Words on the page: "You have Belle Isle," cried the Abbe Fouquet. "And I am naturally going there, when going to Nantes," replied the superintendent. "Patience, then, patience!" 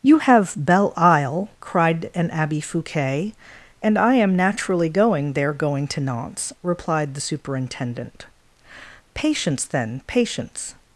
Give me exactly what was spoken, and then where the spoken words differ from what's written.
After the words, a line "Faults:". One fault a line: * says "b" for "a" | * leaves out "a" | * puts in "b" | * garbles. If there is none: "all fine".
"You have Belle Isle," cried an Abbe Fouquet. "And I am naturally going there, going to Nantes," replied the superintendent. "Patience, then, patience!"
Faults:
* says "an" for "the"
* leaves out "when"